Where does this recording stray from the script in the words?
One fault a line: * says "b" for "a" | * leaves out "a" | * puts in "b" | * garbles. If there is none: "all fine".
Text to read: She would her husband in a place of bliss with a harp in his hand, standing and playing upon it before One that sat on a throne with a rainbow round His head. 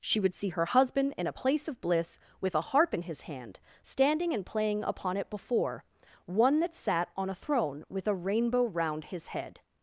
* puts in "see"